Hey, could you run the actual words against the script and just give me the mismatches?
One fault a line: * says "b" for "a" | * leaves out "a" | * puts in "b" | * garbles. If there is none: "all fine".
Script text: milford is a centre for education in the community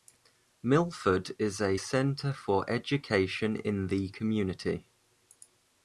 all fine